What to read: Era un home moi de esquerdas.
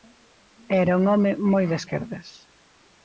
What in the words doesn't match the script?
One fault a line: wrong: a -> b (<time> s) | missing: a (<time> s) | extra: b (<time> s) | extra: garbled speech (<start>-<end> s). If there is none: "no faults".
no faults